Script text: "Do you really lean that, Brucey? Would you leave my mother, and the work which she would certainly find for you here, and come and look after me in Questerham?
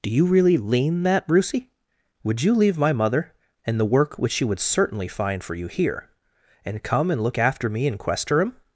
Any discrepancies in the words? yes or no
no